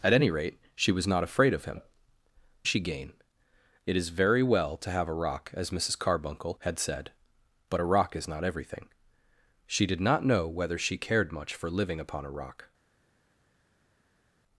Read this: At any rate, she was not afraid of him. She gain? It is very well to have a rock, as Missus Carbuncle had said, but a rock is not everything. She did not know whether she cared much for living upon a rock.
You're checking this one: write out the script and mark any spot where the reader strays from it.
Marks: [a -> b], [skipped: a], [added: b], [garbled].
At any rate, she was not afraid of him. She gain? It is very well to have a rock, as Missus Carbuncle had said, but a rock is not everything. She did not know whether she cared much for living upon a rock.